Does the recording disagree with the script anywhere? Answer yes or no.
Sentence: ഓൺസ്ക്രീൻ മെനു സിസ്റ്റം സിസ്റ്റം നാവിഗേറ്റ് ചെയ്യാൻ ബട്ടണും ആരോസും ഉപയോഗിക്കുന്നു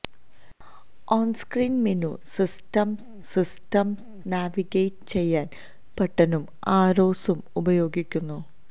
no